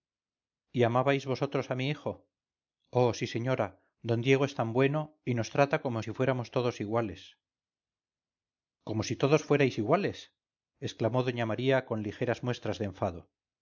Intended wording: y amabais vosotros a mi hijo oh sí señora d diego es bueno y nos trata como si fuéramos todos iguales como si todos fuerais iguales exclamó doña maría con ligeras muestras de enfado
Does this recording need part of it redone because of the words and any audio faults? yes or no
yes